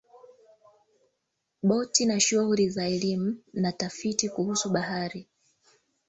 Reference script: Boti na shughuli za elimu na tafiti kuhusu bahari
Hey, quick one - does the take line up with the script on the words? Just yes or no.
yes